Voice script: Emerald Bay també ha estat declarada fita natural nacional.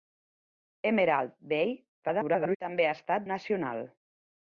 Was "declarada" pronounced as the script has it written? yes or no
no